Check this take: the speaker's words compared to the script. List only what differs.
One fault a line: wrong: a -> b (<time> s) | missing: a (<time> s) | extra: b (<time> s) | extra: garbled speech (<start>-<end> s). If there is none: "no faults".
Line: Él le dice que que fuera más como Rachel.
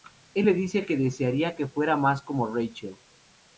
extra: desearía (0.9 s)